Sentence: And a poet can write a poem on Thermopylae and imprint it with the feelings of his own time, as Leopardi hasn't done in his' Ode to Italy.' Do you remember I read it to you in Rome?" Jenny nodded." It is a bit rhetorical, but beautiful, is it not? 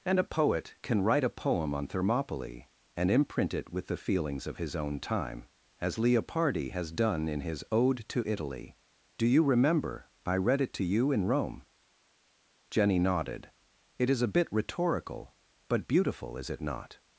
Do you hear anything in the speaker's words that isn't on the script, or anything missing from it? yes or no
yes